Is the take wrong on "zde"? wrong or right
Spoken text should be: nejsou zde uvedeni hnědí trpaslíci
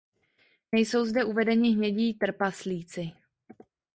right